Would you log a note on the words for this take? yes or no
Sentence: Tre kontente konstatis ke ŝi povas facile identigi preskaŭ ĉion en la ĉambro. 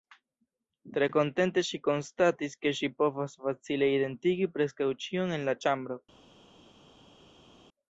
yes